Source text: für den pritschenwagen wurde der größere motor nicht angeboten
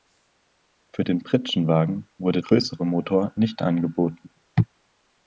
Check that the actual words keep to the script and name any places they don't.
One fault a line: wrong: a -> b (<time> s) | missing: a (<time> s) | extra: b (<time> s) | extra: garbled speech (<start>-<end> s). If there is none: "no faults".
missing: der (2.4 s)